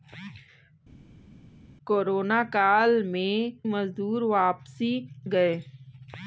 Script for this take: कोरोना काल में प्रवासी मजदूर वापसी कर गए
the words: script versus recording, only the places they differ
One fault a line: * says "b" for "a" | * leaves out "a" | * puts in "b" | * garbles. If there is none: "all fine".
* leaves out "प्रवासी"
* leaves out "कर"